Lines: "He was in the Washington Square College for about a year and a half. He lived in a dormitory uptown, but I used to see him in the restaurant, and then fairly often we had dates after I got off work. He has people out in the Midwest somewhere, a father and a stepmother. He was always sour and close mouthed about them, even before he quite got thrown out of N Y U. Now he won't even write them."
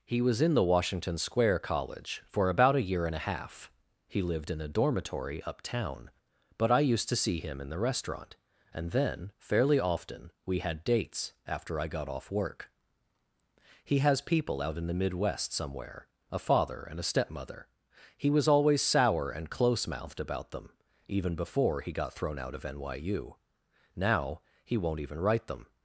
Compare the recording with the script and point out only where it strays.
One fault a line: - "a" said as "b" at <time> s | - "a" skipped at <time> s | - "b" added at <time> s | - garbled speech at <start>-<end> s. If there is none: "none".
- "quite" skipped at 21.9 s